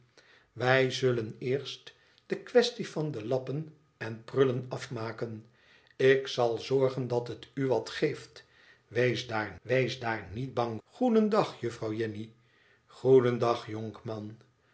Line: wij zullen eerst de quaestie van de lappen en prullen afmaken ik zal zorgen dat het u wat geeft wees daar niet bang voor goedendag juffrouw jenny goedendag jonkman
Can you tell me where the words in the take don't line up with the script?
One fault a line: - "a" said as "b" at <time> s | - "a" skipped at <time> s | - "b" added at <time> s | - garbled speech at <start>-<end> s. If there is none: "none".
- "wees daar" added at 9.6 s
- "voor" skipped at 10.8 s